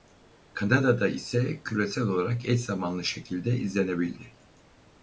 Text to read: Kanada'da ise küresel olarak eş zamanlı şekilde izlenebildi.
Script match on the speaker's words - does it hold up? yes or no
yes